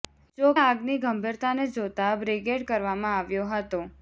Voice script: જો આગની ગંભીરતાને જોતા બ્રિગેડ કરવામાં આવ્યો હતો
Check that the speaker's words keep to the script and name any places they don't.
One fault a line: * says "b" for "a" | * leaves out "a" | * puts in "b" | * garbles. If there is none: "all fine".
all fine